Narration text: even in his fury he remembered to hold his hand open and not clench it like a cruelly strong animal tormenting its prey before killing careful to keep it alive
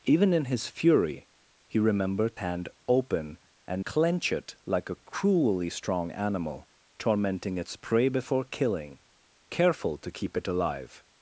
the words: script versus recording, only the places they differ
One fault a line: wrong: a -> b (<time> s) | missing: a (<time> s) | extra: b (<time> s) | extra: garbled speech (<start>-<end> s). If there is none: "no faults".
missing: to hold his (2.4 s)
missing: not (3.9 s)